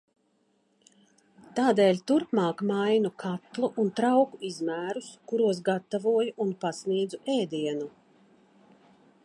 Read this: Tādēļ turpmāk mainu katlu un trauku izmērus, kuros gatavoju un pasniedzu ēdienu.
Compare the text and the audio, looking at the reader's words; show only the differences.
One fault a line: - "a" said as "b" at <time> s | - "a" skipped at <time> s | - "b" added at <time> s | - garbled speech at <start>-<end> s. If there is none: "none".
none